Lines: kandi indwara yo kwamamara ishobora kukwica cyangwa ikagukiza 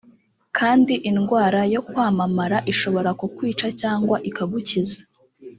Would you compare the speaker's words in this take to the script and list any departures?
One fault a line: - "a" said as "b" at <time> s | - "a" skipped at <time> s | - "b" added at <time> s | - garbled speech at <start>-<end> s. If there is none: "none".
none